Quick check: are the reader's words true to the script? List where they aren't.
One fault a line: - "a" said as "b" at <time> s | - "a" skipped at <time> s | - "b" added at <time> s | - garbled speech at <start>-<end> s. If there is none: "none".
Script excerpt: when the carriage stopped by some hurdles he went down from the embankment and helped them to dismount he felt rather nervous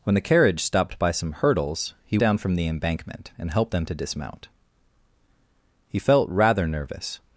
- "went" skipped at 2.2 s